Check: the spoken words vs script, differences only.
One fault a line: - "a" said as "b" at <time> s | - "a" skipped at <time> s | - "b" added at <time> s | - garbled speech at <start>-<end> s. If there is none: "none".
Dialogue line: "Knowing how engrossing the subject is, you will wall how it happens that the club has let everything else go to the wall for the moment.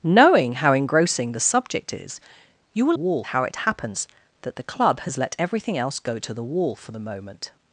none